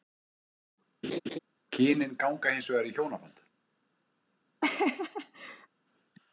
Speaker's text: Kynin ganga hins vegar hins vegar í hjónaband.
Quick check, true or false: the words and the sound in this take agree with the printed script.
false